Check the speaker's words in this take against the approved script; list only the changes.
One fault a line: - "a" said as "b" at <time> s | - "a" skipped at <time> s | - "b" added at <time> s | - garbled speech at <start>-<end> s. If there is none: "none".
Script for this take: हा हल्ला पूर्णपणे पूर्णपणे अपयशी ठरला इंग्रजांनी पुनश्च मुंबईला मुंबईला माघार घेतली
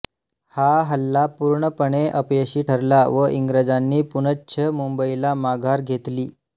- "पूर्णपणे" skipped at 2.0 s
- "व" added at 3.1 s
- "मुंबईला" skipped at 5.3 s